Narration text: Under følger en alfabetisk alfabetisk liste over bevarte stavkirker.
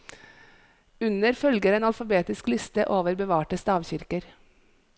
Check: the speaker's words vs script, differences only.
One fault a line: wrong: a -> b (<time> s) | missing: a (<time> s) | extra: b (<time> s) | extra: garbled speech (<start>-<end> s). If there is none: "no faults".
missing: alfabetisk (2.5 s)